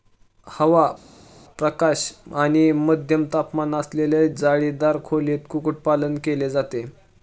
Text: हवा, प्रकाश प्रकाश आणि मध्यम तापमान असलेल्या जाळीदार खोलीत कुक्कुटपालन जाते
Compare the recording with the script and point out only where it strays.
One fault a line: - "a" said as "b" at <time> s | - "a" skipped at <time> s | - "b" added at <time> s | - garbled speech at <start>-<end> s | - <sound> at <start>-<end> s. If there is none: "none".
- "प्रकाश" skipped at 2.0 s
- "केले" added at 6.2 s